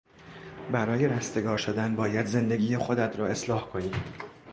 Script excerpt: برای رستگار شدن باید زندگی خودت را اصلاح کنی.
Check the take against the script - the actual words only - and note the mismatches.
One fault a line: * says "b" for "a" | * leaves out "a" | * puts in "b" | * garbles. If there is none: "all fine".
all fine